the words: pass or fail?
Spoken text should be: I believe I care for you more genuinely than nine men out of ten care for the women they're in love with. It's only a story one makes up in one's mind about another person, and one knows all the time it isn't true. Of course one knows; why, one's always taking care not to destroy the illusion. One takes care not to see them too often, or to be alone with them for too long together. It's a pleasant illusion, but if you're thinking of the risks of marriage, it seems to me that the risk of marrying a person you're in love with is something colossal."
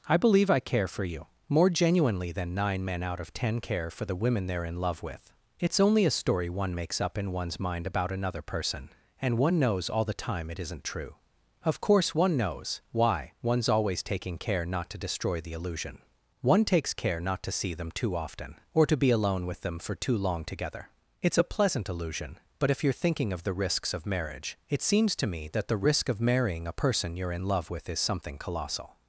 pass